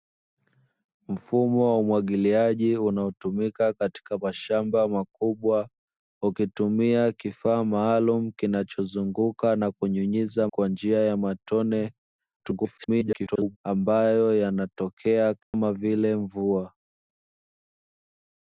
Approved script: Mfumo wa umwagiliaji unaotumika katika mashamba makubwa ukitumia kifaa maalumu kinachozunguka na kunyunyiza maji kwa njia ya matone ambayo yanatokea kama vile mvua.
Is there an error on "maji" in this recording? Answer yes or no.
yes